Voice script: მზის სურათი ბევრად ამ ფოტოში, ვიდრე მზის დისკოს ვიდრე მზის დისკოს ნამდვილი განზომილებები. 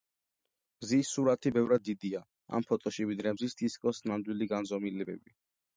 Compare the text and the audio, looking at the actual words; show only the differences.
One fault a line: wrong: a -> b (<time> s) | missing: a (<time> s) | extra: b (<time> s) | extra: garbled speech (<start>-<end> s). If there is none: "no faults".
extra: დიდია (1.9 s)
missing: ვიდრე მზის დისკოს (4.0 s)